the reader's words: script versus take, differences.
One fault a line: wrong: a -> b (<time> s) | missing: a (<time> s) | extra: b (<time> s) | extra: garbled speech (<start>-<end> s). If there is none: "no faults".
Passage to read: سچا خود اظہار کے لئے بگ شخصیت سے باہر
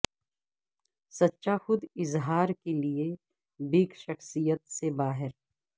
no faults